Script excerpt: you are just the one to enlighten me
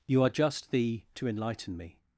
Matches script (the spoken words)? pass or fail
fail